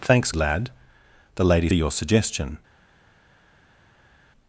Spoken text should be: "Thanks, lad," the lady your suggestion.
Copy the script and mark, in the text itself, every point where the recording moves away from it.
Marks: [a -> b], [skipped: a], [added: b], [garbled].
"Thanks, lad," the lady your suggestion.